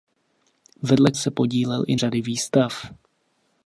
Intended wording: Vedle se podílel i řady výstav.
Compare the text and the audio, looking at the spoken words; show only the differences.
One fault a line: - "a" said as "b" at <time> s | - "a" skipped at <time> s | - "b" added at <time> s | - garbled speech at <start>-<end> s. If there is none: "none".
none